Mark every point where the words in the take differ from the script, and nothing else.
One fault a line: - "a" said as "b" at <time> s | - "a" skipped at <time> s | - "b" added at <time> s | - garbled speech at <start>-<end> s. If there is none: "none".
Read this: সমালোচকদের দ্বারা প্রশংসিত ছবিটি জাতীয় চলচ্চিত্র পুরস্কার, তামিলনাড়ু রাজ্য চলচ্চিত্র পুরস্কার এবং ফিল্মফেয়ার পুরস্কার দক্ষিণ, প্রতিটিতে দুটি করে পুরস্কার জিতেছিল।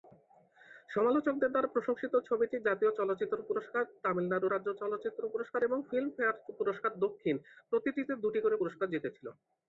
none